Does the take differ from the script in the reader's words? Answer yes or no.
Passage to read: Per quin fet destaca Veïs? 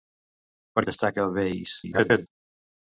yes